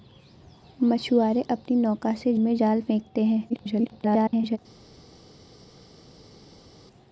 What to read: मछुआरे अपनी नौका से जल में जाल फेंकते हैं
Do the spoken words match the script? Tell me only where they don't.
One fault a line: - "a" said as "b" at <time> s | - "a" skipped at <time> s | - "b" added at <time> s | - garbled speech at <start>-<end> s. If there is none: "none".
- "जल" skipped at 2.3 s
- garbled speech at 3.5-4.6 s